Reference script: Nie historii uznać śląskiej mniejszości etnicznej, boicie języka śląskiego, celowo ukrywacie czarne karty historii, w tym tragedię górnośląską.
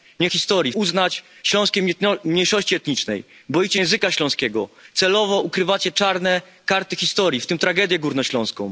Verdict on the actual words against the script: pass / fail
pass